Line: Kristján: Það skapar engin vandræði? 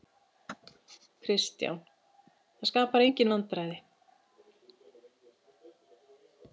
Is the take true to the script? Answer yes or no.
yes